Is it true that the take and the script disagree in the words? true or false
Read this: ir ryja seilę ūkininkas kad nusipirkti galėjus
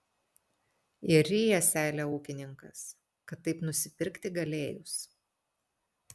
true